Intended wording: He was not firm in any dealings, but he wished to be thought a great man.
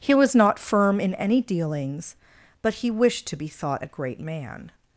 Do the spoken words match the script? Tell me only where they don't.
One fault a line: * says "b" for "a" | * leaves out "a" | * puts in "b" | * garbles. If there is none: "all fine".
all fine